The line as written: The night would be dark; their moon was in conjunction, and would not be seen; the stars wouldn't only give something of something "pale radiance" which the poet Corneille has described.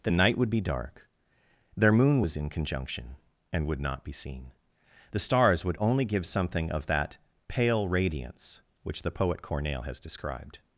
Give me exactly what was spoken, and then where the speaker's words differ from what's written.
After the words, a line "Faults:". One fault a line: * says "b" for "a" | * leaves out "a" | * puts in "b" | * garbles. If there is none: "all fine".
The night would be dark; their moon was in conjunction, and would not be seen; the stars would only give something of that "pale radiance" which the poet Corneille has described.
Faults:
* says "would" for "wouldn't"
* says "that" for "something"